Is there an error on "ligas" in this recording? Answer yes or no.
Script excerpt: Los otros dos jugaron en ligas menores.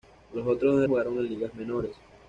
no